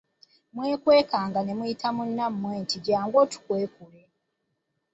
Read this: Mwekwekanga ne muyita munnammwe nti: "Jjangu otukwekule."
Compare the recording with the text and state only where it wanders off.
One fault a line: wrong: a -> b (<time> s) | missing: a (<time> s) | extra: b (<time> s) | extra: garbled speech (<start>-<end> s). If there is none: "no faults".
no faults